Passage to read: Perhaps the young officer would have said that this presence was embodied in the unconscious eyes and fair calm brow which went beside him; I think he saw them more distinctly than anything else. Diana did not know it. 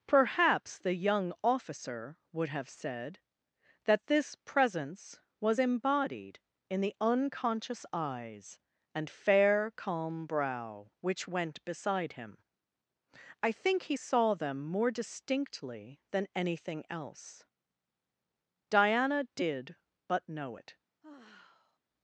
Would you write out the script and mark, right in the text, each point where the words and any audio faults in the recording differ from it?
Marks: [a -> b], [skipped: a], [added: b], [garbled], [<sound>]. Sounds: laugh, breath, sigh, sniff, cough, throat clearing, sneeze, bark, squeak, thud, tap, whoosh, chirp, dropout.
Perhaps the young officer would have said that this presence was embodied in the unconscious eyes and fair calm brow which went beside him; I think he saw them more distinctly than anything else. Diana did [not -> but] know it. [sigh]